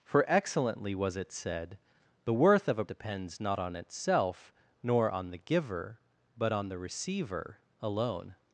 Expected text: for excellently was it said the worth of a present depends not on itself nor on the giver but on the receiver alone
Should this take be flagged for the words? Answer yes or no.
yes